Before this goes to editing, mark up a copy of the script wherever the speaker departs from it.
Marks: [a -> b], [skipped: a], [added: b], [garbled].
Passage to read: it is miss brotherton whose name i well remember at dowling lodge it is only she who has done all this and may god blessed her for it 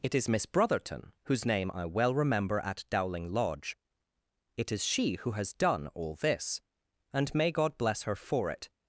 it is miss brotherton whose name i well remember at dowling lodge it is [skipped: only] she who has done all this and may god [blessed -> bless] her for it